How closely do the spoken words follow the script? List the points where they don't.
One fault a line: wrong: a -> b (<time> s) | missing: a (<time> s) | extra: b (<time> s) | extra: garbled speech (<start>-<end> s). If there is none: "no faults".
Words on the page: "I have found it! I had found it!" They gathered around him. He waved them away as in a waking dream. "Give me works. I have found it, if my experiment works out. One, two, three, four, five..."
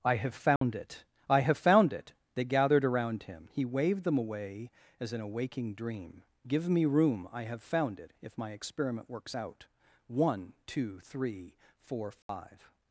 wrong: had -> have (1.4 s)
wrong: works -> room (6.8 s)